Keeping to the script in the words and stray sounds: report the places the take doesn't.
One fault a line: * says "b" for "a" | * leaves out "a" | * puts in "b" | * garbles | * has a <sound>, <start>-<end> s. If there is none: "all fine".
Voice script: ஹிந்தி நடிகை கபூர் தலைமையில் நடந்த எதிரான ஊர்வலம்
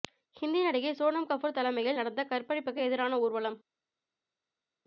* puts in "சோனம்"
* puts in "கற்பழிப்புக்கு"